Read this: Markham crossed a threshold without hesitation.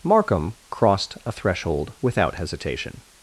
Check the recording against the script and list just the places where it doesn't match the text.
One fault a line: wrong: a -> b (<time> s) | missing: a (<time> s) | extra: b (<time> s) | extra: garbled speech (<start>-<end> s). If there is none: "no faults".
no faults